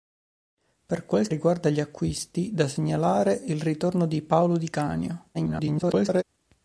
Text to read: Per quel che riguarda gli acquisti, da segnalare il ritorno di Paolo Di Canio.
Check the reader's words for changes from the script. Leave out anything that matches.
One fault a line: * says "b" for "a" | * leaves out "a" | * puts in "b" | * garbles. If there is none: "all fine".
* leaves out "che"
* garbles